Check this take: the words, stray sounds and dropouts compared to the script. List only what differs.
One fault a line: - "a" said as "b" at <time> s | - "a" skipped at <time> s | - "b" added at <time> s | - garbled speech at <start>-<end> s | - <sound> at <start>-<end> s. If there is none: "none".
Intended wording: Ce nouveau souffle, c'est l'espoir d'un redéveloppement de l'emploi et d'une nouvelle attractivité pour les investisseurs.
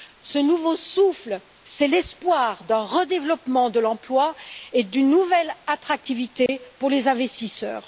- dropout at 6.5-6.5 s